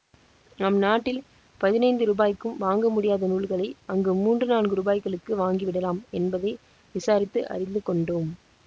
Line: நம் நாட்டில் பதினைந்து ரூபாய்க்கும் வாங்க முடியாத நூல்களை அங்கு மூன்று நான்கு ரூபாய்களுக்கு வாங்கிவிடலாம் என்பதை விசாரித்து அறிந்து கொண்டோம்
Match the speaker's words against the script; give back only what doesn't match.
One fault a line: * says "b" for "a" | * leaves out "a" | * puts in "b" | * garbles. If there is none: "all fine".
all fine